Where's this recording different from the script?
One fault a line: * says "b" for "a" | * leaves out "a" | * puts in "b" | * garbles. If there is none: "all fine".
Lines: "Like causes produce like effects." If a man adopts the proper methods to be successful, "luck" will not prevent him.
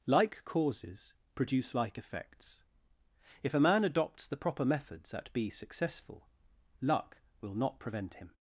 * says "at" for "to"